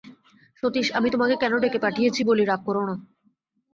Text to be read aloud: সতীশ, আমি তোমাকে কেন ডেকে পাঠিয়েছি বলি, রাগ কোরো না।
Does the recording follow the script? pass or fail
pass